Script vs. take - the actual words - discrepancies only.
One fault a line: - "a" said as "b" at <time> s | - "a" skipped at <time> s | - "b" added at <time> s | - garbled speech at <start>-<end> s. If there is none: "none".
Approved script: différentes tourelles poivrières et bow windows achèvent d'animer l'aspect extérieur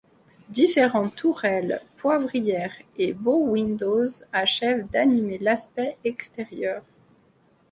none